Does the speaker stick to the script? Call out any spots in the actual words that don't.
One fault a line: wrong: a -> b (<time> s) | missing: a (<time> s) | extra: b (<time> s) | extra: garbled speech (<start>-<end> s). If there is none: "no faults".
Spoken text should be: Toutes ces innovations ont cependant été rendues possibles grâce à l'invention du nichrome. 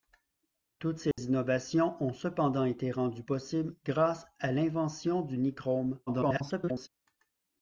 extra: garbled speech (6.1-6.9 s)